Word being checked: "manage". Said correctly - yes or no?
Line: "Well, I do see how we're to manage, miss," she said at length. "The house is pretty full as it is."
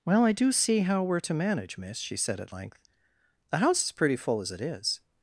yes